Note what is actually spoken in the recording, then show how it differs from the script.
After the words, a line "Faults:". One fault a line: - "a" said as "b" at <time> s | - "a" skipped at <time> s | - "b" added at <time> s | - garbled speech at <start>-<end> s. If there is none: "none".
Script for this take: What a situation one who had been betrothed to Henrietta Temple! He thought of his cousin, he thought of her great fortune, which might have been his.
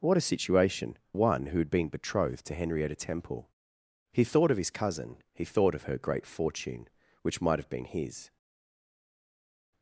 What a situation one who had been betrothed to Henrietta Temple! He thought of his cousin, he thought of her great fortune, which might have been his.
Faults:
none